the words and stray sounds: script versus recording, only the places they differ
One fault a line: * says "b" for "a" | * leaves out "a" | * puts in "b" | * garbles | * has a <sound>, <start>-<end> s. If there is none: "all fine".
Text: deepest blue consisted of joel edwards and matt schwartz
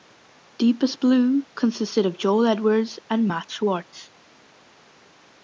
all fine